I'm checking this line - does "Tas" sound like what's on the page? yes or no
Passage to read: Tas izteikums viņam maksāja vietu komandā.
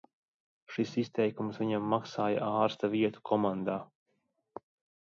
no